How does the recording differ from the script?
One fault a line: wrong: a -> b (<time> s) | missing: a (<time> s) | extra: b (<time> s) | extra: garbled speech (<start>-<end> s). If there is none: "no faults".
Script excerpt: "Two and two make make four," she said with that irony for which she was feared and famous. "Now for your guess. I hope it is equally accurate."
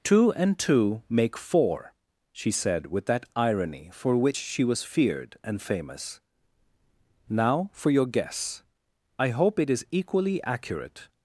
missing: make (1.4 s)